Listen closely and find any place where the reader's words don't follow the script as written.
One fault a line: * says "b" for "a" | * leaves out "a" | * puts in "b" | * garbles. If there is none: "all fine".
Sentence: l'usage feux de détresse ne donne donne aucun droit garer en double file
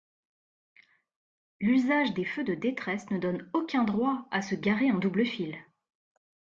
* puts in "des"
* leaves out "donne"
* puts in "à se"